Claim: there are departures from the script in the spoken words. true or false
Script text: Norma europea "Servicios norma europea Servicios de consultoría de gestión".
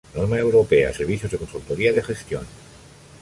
true